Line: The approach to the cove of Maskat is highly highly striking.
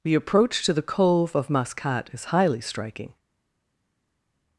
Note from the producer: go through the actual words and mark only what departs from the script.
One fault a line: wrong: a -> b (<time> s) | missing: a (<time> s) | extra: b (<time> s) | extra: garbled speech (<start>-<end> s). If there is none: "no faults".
missing: highly (2.6 s)